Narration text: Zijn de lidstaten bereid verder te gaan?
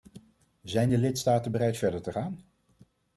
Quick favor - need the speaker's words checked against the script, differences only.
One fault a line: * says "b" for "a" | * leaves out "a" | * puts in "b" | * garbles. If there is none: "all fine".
all fine